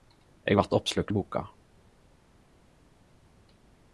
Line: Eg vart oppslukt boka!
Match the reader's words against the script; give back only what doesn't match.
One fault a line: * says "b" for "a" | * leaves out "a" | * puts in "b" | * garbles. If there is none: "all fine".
all fine